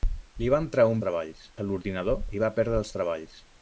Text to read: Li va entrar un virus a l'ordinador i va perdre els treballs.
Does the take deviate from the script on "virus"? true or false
true